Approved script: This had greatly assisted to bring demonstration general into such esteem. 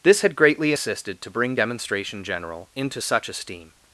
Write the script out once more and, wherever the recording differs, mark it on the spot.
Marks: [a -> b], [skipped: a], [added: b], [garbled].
This had greatly assisted to bring demonstration general into such esteem.